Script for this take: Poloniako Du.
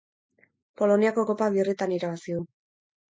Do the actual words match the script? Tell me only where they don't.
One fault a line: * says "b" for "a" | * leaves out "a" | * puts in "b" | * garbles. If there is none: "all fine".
* puts in "Kopa birritan irabazi"